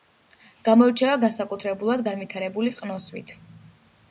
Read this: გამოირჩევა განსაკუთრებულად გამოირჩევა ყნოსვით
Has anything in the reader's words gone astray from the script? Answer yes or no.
yes